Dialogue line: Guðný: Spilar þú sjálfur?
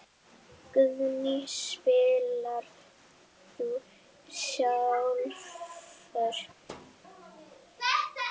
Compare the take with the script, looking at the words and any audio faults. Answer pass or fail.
fail